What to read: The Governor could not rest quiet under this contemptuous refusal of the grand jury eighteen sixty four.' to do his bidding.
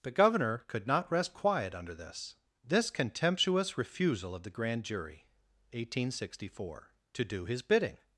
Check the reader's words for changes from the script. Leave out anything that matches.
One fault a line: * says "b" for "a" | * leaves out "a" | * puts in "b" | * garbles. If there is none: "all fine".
* puts in "this"